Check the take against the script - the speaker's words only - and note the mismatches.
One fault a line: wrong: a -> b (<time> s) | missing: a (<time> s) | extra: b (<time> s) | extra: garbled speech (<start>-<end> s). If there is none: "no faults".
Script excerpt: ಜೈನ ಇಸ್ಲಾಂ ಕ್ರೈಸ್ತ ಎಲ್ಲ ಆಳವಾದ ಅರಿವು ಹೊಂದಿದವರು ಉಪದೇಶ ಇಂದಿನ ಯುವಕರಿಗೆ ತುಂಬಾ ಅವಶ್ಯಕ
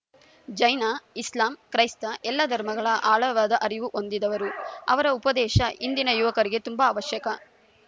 extra: ಧರ್ಮಗಳ (2.5 s)
extra: ಅವರ (4.9 s)